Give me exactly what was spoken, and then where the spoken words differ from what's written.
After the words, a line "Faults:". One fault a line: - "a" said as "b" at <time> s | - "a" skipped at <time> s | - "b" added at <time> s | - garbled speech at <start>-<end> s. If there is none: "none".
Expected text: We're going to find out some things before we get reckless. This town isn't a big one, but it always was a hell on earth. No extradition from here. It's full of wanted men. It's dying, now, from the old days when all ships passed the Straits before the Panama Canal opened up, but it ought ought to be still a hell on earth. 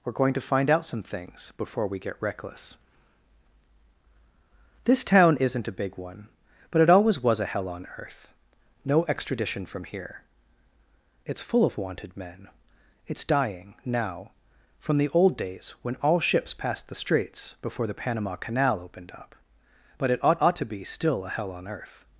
We're going to find out some things before we get reckless. This town isn't a big one, but it always was a hell on earth. No extradition from here. It's full of wanted men. It's dying, now, from the old days when all ships passed the Straits before the Panama Canal opened up, but it ought ought to be still a hell on earth.
Faults:
none